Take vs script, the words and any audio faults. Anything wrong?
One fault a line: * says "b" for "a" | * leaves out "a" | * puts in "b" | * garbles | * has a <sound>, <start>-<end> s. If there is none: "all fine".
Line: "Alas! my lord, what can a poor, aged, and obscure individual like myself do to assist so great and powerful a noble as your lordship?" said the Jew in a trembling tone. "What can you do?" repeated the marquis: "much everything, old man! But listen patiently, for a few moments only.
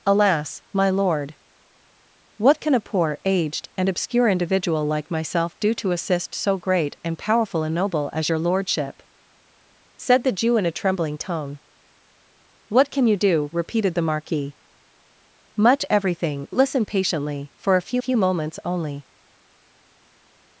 * leaves out "old man But"
* puts in "few"